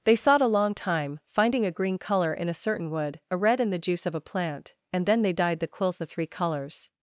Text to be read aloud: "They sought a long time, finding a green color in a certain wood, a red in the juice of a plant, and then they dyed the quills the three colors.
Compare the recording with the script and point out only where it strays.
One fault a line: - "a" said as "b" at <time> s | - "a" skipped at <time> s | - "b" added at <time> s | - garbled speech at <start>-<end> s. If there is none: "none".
none